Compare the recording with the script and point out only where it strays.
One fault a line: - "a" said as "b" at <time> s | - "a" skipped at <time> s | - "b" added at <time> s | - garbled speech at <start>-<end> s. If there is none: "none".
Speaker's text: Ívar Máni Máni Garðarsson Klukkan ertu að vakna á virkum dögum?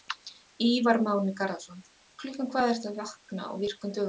- "Máni" skipped at 1.4 s
- "hvað" added at 2.5 s